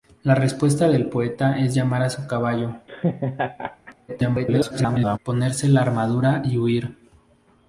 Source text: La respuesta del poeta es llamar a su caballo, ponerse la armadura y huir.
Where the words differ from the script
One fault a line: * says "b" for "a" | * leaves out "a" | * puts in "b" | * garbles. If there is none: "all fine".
* garbles